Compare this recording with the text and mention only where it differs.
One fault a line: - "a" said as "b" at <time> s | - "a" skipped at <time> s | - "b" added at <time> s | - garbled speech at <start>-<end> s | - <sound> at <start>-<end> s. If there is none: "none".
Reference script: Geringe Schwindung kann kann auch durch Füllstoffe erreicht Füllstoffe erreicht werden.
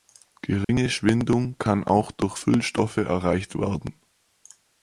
- dropout at 0.6-0.7 s
- "kann" skipped at 1.8 s
- "Füllstoffe erreicht" skipped at 3.6 s